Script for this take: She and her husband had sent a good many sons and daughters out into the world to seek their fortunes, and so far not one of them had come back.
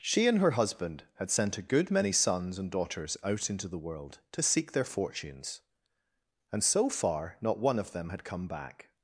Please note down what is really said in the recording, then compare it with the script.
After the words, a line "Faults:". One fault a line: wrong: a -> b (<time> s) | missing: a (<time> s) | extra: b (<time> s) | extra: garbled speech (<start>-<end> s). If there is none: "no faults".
She and her husband had sent a good many sons and daughters out into the world to seek their fortunes, and so far not one of them had come back.
Faults:
no faults